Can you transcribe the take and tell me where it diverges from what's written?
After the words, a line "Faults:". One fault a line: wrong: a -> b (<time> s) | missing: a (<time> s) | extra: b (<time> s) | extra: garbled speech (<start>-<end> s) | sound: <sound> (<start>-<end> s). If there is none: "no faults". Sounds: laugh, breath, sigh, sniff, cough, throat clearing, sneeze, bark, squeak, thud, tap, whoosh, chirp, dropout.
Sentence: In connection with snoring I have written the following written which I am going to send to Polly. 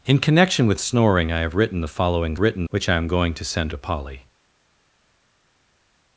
In connection with snoring I have written the following written which I am going to send to Polly.
Faults:
no faults